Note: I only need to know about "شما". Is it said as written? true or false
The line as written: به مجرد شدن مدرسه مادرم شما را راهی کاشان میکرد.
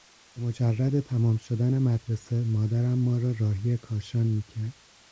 false